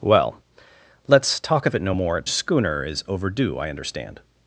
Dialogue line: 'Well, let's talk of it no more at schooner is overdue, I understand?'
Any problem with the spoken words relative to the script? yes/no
no